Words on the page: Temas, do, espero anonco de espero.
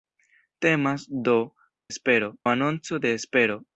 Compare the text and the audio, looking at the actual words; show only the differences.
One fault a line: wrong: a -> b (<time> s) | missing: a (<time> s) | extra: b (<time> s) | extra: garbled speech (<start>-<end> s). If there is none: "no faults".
no faults